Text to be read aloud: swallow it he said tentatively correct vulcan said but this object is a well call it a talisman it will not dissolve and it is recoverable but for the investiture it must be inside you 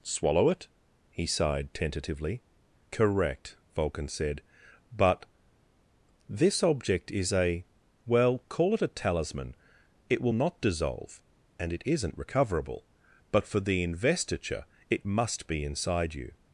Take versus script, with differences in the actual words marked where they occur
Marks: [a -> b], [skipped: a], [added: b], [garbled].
swallow it he [said -> sighed] tentatively correct vulcan said but this object is a well call it a talisman it will not dissolve and it [is -> isn't] recoverable but for the investiture it must be inside you